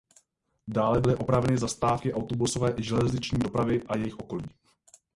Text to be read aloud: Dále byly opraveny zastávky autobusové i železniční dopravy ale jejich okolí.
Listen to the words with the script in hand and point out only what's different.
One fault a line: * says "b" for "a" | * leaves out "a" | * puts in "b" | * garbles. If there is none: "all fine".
* says "a" for "ale"